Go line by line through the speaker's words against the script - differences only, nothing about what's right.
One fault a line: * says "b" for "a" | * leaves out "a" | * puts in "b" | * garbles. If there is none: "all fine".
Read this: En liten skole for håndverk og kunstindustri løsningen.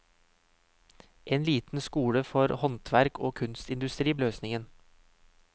all fine